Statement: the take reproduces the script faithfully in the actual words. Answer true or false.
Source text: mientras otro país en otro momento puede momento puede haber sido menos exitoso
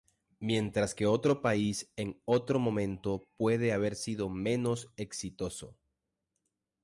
false